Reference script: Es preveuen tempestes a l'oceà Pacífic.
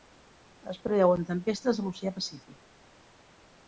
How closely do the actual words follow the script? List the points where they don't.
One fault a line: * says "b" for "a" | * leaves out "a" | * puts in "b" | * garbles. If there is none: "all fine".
all fine